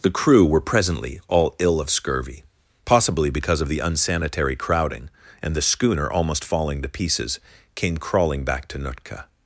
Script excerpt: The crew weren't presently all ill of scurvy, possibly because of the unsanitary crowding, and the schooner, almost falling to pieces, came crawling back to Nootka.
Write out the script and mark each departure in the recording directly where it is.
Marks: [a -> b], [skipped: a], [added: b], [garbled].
The crew [weren't -> were] presently all ill of scurvy, possibly because of the unsanitary crowding, and the schooner, almost falling to pieces, came crawling back to Nootka.